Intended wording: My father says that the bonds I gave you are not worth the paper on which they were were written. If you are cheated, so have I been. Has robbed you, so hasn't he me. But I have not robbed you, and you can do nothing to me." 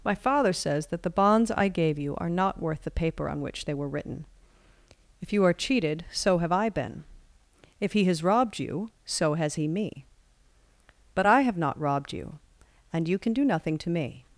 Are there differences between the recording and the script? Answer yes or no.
yes